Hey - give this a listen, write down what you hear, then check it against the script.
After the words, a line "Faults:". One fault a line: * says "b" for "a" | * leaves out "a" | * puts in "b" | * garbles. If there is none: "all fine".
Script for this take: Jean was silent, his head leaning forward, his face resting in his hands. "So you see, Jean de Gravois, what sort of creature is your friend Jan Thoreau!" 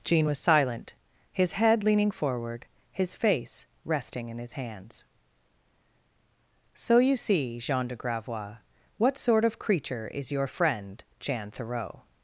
Jean was silent, his head leaning forward, his face resting in his hands. "So you see, Jean de Gravois, what sort of creature is your friend Jan Thoreau!"
Faults:
all fine